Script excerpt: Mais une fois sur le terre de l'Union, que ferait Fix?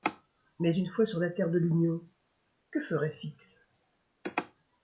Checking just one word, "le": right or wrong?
wrong